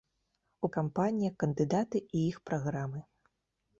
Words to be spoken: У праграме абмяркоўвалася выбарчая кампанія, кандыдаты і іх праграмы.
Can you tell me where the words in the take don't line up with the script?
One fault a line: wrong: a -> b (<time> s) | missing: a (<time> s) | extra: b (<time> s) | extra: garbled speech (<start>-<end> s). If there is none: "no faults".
missing: праграме абмяркоўвалася выбарчая (0.7 s)